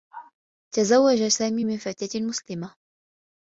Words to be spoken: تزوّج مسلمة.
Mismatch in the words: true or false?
true